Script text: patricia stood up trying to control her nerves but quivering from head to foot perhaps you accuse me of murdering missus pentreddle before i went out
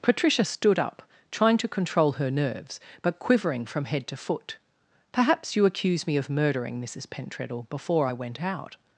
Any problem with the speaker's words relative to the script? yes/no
no